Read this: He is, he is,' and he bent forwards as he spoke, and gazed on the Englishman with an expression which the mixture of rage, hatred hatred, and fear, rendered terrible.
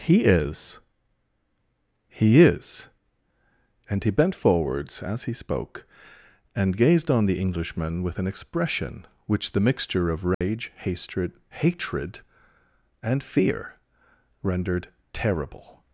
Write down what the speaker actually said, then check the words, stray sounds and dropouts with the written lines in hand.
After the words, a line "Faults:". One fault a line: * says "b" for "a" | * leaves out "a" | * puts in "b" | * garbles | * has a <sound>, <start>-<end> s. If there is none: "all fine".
He is, he is,' and he bent forwards as he spoke, and gazed on the Englishman with an expression which the mixture of rage, hatred hatred, and fear, rendered terrible.
Faults:
* has a dropout, 10.3-10.4 s